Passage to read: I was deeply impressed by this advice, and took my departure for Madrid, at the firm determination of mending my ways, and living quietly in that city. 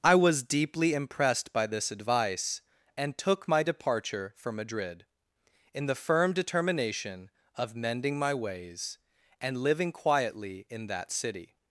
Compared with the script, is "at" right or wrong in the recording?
wrong